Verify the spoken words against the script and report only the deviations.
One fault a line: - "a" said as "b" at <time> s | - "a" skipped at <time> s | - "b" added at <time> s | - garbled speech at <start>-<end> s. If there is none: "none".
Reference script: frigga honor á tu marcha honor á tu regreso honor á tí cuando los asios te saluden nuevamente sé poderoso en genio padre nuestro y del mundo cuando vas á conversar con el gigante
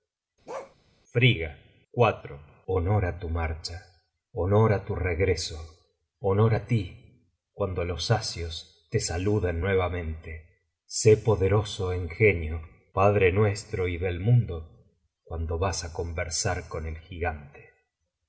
none